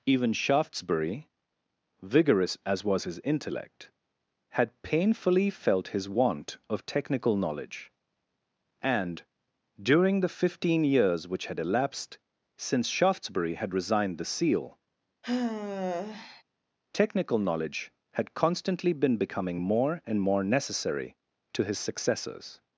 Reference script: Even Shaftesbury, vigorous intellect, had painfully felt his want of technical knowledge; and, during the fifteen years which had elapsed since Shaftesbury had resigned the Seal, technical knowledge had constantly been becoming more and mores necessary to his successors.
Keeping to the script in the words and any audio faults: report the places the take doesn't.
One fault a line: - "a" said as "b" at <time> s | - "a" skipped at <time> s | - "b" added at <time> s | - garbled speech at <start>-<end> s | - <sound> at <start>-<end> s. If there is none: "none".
- "as was his" added at 2.6 s
- sigh at 15.2-16.4 s
- "mores" said as "more" at 20.2 s